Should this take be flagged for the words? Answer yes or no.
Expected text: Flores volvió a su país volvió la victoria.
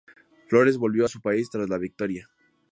yes